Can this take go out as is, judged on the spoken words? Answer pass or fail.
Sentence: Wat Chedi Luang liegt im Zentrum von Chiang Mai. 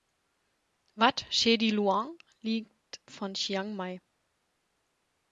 fail